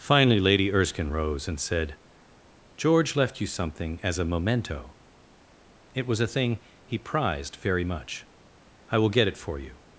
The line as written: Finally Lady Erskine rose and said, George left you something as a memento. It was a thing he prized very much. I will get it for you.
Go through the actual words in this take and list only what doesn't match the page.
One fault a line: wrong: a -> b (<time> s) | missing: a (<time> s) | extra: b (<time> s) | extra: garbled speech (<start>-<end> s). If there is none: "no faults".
no faults